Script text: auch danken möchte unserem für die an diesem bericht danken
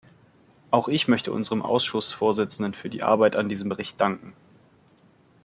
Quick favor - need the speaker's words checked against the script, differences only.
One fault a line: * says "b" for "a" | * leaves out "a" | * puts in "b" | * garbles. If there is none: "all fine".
* says "ich" for "danken"
* puts in "ausschussvorsitzenden"
* puts in "arbeit"